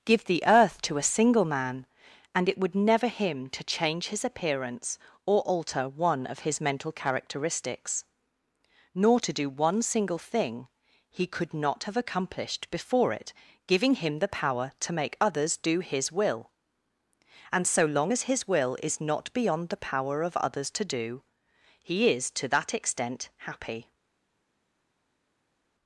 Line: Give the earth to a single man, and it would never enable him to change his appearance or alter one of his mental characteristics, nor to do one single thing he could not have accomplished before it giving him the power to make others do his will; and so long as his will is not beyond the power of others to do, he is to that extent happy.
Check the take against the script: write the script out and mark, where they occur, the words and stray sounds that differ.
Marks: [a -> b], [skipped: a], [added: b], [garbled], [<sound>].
Give the earth to a single man, and it would never [skipped: enable] him to change his appearance or alter one of his mental characteristics, nor to do one single thing he could not have accomplished before it giving him the power to make others do his will; and so long as his will is not beyond the power of others to do, he is to that extent happy.